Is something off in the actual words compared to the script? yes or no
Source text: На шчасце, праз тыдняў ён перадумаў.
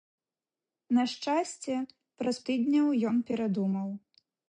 no